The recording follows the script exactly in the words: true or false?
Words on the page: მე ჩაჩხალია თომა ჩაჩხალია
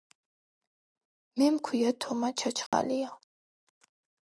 false